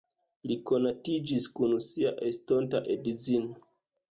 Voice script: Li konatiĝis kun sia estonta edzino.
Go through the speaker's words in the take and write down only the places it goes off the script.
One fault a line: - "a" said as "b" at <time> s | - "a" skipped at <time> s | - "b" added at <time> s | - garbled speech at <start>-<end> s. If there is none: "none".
none